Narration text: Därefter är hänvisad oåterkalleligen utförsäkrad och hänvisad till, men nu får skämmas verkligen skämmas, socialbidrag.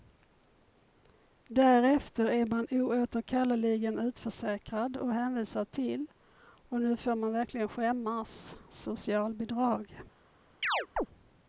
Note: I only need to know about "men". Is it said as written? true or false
false